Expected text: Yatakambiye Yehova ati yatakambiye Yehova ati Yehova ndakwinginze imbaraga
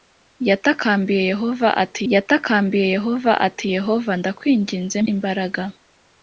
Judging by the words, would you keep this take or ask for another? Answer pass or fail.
pass